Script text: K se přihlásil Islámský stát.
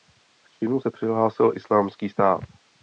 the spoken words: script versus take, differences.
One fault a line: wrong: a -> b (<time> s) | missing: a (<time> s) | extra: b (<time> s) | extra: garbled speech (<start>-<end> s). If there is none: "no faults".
extra: činu (0.5 s)